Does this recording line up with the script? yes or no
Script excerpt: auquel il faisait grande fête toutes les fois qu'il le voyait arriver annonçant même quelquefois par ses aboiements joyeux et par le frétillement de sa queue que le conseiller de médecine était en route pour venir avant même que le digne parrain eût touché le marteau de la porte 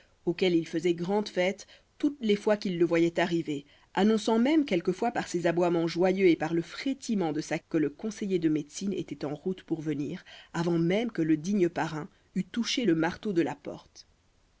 no